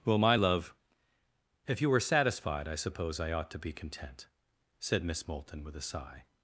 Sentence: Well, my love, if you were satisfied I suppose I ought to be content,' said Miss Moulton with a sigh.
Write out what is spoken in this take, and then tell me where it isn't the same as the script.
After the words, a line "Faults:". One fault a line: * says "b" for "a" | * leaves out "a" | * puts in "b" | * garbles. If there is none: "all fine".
Well, my love, if you were satisfied I suppose I ought to be content,' said Miss Moulton with a sigh.
Faults:
all fine